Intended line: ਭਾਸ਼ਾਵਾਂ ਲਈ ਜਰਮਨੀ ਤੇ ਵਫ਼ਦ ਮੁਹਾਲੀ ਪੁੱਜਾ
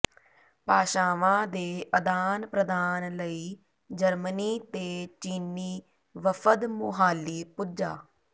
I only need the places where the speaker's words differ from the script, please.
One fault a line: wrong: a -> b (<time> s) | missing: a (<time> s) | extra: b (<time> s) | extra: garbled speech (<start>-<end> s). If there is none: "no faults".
extra: ਦੇ ਅਦਾਨ ਪ੍ਰਦਾਨ (1.5 s)
extra: ਚੀਨੀ (5.2 s)